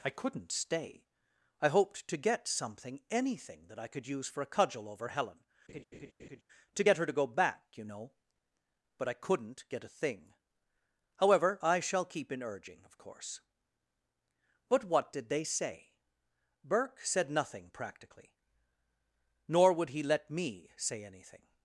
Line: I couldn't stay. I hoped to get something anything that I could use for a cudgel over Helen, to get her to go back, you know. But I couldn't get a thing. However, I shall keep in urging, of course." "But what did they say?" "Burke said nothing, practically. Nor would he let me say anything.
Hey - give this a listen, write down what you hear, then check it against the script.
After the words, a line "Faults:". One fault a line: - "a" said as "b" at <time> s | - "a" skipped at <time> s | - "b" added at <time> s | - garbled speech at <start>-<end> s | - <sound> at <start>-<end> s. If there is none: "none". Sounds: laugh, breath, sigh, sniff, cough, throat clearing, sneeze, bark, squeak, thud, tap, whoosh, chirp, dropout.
I couldn't stay. I hoped to get something anything that I could use for a cudgel over Helen, to get her to go back, you know. But I couldn't get a thing. However, I shall keep in urging, of course." "But what did they say?" "Burke said nothing, practically. Nor would he let me say anything.
Faults:
- laugh at 5.7-6.4 s